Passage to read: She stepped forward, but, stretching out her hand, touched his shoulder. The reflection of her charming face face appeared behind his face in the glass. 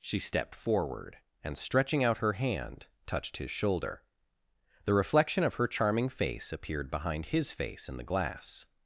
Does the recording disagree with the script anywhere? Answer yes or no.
yes